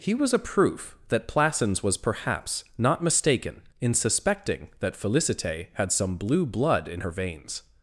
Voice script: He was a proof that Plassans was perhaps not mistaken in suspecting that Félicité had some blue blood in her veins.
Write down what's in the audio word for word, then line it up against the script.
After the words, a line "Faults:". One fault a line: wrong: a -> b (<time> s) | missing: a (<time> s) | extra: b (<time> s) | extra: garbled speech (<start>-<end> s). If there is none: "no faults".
He was a proof that Plassans was perhaps not mistaken in suspecting that Félicité had some blue blood in her veins.
Faults:
no faults